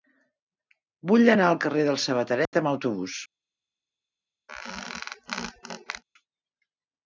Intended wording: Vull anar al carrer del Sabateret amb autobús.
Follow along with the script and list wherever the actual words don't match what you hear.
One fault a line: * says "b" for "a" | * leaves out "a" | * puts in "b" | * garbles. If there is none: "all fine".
all fine